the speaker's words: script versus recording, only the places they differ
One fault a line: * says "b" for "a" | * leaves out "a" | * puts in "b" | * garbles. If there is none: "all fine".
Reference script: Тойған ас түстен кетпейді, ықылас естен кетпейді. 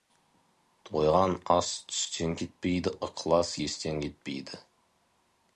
all fine